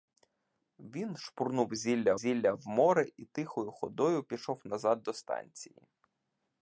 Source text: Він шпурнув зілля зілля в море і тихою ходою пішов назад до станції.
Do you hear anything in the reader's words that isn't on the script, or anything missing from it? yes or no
no